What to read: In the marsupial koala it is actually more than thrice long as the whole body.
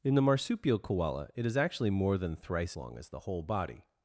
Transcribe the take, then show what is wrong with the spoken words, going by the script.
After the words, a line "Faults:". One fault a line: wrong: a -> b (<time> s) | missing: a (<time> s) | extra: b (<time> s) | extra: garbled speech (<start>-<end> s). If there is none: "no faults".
In the marsupial koala it is actually more than thrice long as the whole body.
Faults:
no faults